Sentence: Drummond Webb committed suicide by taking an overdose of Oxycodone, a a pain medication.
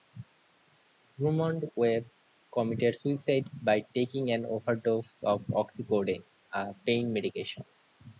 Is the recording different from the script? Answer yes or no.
yes